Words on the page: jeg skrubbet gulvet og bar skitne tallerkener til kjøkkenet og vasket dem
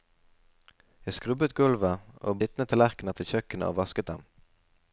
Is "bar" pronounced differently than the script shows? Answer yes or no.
yes